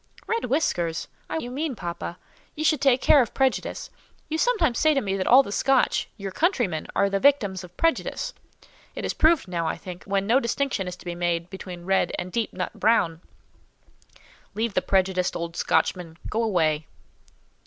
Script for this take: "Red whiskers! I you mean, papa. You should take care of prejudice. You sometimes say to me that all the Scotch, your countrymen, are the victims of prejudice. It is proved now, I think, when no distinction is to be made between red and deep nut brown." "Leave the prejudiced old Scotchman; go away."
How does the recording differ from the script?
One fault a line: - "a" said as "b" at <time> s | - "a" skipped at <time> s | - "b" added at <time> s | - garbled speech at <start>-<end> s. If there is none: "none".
none